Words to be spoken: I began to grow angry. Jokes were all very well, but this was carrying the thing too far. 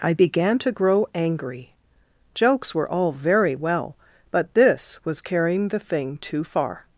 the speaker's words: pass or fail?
pass